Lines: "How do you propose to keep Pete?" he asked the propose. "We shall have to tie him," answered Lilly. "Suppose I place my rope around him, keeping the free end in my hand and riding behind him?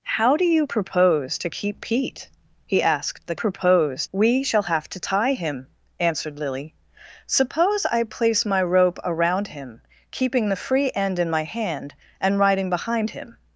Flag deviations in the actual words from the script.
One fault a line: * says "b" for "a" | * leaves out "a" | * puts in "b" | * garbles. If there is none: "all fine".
all fine